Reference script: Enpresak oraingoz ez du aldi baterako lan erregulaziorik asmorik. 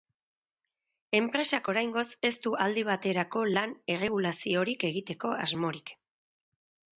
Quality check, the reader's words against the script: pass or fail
fail